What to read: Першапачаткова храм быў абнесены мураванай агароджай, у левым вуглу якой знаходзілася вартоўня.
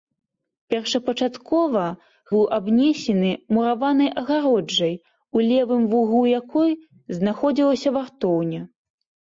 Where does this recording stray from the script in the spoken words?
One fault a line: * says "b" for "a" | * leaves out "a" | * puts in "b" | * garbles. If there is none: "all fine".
* leaves out "храм"